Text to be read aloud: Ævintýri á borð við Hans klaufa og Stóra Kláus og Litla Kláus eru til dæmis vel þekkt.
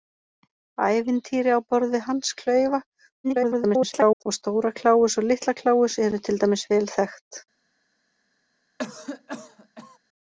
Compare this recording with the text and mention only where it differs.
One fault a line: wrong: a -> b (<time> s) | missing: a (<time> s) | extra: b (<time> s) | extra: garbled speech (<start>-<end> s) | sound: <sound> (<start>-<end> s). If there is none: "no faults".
extra: garbled speech (3.2-4.2 s)
sound: cough (8.8-10.0 s)